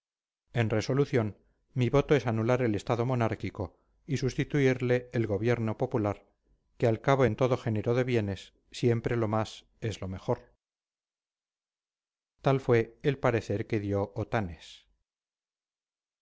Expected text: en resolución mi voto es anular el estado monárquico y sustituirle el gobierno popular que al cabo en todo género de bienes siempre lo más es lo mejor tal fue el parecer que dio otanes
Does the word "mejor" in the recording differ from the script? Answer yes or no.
no